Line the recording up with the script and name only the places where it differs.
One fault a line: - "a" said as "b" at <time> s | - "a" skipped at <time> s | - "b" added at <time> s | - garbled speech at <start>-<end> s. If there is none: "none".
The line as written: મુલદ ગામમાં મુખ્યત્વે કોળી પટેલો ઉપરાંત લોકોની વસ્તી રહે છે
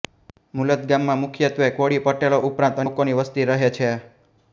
none